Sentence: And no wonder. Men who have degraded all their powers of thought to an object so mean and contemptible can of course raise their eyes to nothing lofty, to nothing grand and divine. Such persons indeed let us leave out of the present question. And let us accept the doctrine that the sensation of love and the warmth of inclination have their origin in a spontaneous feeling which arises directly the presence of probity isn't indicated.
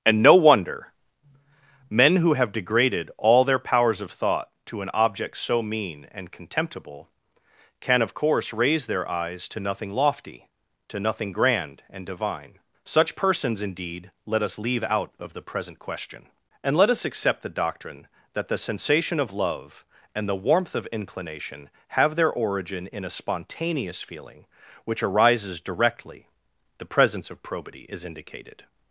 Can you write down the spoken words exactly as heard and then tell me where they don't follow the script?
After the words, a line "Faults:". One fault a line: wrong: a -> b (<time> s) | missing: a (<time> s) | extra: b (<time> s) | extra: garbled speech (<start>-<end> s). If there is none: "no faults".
And no wonder. Men who have degraded all their powers of thought to an object so mean and contemptible can of course raise their eyes to nothing lofty, to nothing grand and divine. Such persons indeed let us leave out of the present question. And let us accept the doctrine that the sensation of love and the warmth of inclination have their origin in a spontaneous feeling which arises directly the presence of probity is indicated.
Faults:
wrong: isn't -> is (27.9 s)